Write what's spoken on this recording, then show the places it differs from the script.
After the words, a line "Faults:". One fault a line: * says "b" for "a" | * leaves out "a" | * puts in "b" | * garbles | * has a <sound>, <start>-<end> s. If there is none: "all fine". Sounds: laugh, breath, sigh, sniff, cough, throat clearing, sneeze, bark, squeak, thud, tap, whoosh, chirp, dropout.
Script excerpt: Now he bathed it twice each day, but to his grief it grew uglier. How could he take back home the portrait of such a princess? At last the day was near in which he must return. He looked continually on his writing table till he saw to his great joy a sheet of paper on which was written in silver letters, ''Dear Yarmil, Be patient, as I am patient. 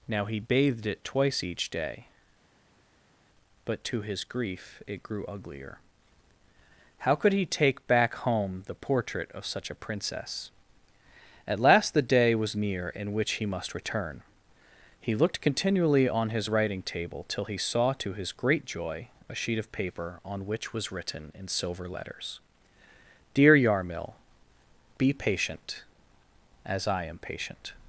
Now he bathed it twice each day, but to his grief it grew uglier. How could he take back home the portrait of such a princess? At last the day was near in which he must return. He looked continually on his writing table till he saw to his great joy a sheet of paper on which was written in silver letters, ''Dear Yarmil, Be patient, as I am patient.
Faults:
all fine